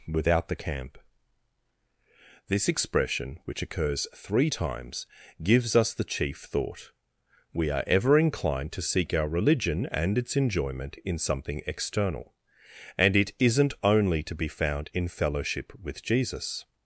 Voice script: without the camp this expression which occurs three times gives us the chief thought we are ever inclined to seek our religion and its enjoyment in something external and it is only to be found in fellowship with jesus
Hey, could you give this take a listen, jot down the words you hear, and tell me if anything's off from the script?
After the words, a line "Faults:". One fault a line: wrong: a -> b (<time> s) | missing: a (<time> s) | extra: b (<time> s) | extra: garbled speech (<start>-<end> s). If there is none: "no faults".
without the camp this expression which occurs three times gives us the chief thought we are ever inclined to seek our religion and its enjoyment in something external and it isn't only to be found in fellowship with jesus
Faults:
wrong: is -> isn't (13.4 s)